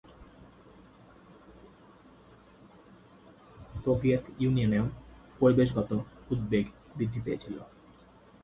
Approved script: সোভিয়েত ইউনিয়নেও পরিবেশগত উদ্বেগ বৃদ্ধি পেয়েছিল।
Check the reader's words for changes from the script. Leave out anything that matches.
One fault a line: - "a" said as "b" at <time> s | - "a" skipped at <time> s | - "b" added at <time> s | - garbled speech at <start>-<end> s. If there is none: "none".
none